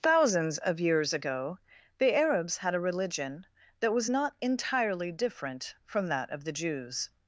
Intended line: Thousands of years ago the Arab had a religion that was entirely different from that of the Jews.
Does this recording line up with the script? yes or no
no